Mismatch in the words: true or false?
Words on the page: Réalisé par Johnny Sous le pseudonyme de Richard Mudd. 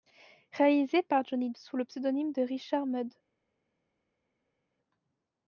false